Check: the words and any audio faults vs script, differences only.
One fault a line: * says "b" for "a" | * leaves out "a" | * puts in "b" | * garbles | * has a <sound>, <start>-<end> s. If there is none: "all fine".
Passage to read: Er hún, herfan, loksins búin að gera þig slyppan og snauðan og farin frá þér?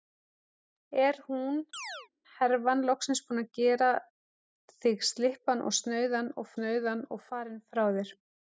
* has a chirp, 1.7-2.1 s
* puts in "snauðan og"